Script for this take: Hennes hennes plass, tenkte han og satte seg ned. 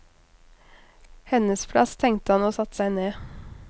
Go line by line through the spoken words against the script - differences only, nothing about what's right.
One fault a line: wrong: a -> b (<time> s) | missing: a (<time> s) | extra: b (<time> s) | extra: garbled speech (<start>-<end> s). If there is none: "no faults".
missing: hennes (1.6 s)